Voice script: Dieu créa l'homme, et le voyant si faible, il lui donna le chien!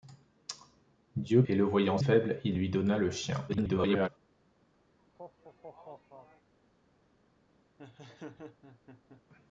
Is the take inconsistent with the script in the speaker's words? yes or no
yes